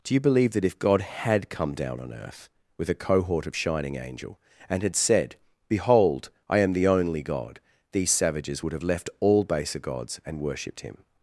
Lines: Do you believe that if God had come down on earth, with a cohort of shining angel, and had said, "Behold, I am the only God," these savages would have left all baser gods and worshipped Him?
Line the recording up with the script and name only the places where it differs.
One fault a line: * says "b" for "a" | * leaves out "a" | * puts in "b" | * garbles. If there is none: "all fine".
all fine